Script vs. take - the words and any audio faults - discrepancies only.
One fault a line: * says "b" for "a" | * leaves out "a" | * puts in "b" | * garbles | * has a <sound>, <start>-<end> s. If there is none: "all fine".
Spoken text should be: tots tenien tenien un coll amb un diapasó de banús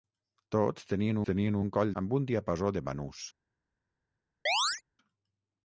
* has a chirp, 4.5-4.8 s